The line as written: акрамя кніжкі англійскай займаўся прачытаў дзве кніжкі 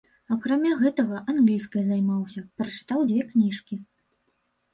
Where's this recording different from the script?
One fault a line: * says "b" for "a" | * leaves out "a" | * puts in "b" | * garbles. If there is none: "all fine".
* says "гэтага" for "кніжкі"